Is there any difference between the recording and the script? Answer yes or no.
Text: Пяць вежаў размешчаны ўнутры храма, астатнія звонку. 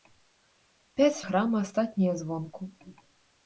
yes